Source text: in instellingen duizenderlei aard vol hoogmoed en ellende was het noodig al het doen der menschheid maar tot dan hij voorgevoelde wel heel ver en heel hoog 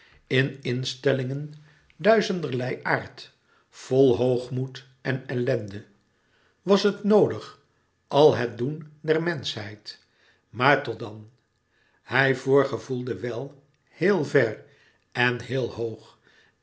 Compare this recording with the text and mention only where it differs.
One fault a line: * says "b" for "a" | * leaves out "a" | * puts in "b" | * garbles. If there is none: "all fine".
all fine